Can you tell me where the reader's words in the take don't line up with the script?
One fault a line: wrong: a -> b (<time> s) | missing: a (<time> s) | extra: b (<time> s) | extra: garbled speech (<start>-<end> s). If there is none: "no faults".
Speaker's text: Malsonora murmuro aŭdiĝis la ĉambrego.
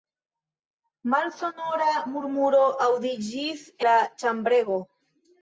no faults